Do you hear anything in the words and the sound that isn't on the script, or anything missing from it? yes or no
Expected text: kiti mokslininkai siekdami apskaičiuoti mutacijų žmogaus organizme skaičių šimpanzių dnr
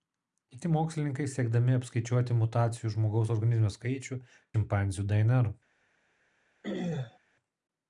yes